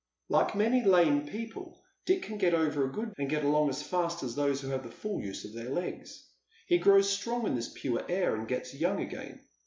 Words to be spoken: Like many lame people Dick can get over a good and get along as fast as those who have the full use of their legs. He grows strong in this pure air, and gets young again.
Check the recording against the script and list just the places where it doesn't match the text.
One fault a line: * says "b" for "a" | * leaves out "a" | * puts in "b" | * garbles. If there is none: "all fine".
all fine